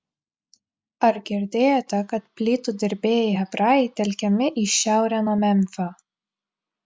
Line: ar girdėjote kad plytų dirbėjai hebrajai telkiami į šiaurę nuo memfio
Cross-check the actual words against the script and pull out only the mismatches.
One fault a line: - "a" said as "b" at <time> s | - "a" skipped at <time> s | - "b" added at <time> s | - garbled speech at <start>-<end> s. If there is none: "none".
none